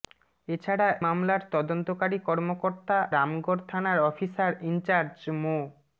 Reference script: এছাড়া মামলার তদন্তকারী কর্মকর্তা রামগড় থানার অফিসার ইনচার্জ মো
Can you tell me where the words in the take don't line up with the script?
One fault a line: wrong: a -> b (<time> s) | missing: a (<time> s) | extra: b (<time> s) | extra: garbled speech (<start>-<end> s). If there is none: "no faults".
no faults